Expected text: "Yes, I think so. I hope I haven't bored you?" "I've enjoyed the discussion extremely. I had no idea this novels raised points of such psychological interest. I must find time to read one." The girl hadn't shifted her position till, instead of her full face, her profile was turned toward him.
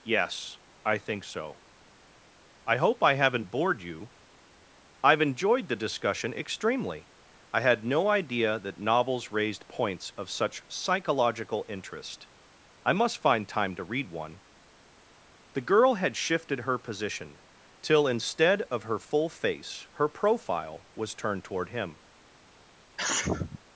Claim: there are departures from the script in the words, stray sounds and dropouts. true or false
true